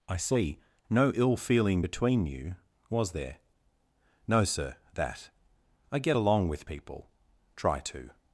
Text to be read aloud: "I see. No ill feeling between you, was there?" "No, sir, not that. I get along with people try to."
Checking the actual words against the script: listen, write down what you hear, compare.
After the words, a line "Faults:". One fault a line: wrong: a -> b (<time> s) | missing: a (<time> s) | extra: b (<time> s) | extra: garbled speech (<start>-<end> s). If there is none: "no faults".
"I see. No ill feeling between you, was there?" "No, sir, that. I get along with people try to."
Faults:
missing: not (4.8 s)